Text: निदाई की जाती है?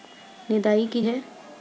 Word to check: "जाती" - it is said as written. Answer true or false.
false